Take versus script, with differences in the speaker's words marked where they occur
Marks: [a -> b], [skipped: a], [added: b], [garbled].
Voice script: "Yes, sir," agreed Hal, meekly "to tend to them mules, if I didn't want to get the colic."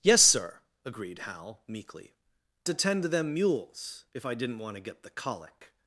"Yes, sir," agreed Hal, meekly "to tend to them mules, if I didn't want to get the colic."